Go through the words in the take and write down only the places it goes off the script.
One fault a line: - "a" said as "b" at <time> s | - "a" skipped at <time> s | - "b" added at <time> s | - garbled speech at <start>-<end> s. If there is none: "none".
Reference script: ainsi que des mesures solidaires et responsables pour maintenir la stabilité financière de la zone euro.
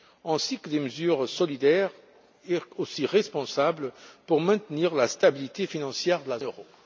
- "zone" skipped at 6.4 s